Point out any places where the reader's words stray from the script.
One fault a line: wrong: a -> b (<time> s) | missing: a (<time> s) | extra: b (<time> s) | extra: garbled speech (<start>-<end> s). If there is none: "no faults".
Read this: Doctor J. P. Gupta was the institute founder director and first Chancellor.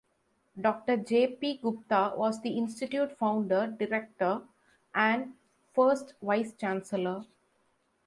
extra: Vice (6.2 s)